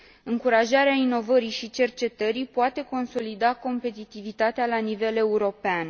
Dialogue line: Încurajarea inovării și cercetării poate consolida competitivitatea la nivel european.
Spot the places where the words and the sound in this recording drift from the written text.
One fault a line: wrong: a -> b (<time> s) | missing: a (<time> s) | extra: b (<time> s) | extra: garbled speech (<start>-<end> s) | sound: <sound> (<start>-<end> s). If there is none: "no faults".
no faults